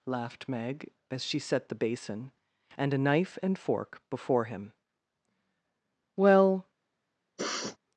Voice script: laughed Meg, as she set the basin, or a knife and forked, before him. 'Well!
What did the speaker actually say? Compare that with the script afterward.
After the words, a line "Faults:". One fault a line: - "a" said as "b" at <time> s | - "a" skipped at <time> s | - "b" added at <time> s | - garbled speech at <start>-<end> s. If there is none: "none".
laughed Meg, as she set the basin, and a knife and fork, before him. 'Well!
Faults:
- "or" said as "and" at 2.8 s
- "forked" said as "fork" at 3.6 s